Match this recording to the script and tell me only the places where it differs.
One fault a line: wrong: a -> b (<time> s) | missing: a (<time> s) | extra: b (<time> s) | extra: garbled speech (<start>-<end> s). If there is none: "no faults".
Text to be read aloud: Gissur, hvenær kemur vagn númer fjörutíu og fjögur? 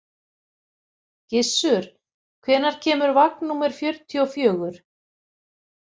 no faults